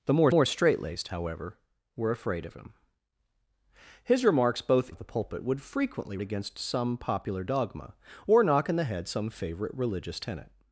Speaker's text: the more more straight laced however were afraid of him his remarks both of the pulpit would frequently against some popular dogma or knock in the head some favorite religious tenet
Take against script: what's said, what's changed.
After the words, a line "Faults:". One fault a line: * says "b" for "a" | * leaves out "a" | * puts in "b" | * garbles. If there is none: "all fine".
the more more straight laced however were afraid of him his remarks both of the pulpit would frequently against some popular dogma or knock in the head some favorite religious tenet
Faults:
all fine